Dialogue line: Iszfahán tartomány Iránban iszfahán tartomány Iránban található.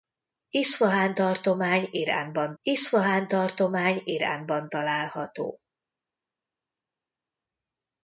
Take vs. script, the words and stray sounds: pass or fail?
pass